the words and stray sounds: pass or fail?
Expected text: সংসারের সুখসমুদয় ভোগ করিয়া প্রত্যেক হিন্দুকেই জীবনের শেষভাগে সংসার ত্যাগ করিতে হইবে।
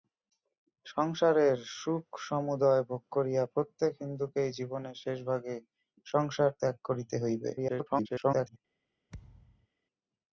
fail